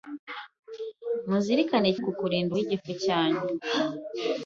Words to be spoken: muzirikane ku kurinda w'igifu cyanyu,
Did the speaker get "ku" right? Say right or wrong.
right